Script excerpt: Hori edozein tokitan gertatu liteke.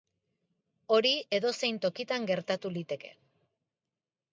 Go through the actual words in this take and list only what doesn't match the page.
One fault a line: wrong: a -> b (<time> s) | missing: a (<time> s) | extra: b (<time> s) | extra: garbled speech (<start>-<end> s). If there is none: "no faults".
no faults